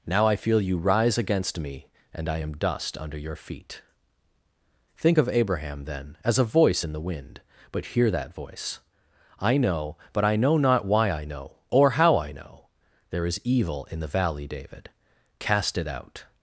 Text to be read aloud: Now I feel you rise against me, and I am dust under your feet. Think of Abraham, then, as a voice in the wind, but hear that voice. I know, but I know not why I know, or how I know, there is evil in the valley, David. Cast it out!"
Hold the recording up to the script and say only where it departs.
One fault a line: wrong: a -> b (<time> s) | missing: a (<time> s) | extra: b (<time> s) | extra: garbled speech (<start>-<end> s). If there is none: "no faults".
no faults